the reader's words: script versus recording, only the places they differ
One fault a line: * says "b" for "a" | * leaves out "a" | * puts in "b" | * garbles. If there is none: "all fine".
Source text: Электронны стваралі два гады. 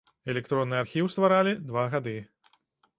* puts in "архіў"